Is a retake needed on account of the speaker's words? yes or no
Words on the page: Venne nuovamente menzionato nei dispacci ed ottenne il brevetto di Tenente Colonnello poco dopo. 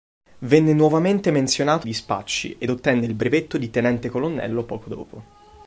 yes